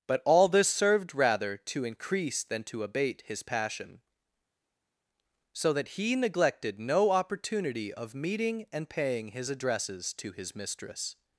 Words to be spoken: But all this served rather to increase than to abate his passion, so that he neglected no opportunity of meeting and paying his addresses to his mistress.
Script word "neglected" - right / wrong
right